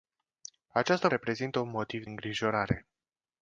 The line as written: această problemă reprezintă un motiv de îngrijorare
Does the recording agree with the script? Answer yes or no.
no